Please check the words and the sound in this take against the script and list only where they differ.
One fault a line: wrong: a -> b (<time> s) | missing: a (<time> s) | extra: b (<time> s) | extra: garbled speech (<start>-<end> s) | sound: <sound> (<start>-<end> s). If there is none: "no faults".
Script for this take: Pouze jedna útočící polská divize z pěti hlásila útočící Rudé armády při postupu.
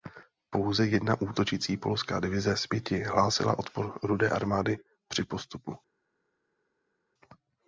wrong: útočící -> odpor (3.6 s)